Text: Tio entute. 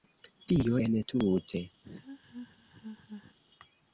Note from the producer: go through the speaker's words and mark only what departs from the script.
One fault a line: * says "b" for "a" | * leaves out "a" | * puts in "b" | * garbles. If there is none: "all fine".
all fine